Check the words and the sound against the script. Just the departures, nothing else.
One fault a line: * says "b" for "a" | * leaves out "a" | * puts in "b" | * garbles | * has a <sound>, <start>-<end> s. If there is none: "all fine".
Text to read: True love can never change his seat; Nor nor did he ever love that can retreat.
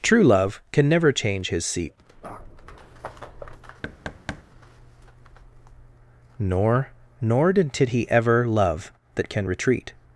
* has a thud, 3.8-4.4 s